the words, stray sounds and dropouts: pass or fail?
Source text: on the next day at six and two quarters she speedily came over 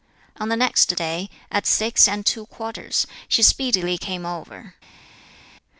pass